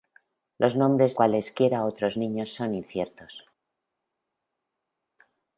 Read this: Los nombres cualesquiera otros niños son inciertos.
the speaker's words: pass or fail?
pass